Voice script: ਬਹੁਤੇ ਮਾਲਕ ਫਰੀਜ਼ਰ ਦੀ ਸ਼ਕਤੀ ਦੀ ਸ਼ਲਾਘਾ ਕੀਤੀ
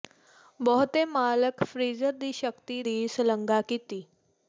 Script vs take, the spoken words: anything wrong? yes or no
no